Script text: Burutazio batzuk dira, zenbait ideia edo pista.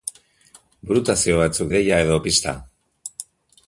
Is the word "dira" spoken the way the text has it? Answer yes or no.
no